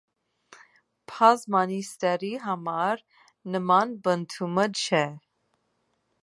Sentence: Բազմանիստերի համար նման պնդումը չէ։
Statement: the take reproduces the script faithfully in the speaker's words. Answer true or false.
true